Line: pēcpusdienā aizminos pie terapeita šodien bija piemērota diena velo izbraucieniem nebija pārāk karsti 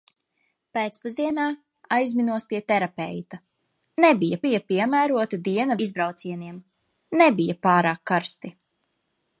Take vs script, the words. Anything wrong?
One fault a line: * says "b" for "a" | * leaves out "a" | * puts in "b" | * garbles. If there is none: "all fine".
* says "nebija" for "šodien"
* leaves out "velo"